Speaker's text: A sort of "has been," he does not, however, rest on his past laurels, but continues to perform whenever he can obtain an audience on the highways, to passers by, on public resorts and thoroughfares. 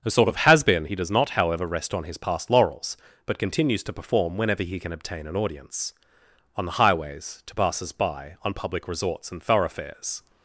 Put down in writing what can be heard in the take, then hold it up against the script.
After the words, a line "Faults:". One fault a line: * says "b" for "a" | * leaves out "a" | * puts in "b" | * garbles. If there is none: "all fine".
A sort of "has been," he does not, however, rest on his past laurels, but continues to perform whenever he can obtain an audience on the highways, to passers by, on public resorts and thoroughfares.
Faults:
all fine